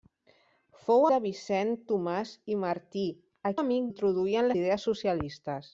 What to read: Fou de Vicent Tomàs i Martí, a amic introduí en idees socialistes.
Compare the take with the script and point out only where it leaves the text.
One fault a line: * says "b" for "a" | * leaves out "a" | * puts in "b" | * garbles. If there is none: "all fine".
all fine